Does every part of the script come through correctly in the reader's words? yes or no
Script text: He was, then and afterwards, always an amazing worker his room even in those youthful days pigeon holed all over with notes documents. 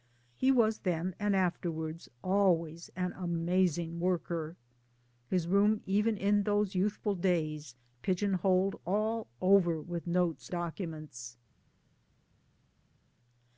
yes